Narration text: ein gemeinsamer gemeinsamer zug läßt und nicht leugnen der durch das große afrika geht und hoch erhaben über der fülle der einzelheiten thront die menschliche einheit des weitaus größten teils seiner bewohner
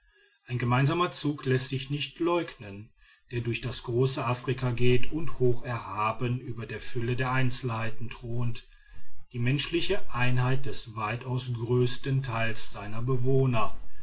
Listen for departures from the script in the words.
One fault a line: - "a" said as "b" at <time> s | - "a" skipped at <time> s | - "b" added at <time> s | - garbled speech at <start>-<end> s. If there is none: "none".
- "gemeinsamer" skipped at 1.1 s
- "und" said as "sich" at 1.7 s